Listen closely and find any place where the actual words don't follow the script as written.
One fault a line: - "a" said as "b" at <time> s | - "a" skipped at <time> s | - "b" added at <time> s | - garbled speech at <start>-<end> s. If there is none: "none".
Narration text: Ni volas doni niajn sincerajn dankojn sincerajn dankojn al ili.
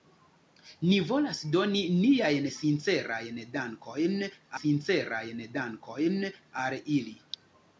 none